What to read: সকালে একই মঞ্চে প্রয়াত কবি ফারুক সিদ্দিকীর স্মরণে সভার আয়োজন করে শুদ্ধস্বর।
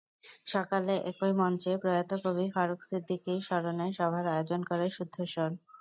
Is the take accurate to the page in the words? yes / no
yes